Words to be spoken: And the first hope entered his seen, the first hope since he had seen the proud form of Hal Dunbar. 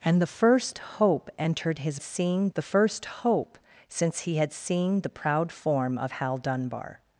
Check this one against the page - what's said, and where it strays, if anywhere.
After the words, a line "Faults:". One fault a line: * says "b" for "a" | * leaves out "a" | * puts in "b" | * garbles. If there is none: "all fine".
And the first hope entered his seen, the first hope since he had seen the proud form of Hal Dunbar.
Faults:
all fine